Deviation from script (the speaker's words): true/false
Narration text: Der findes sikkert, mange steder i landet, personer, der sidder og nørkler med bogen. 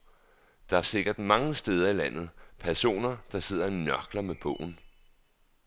true